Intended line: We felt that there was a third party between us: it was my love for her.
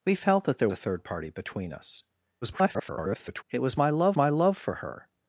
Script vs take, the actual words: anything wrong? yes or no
yes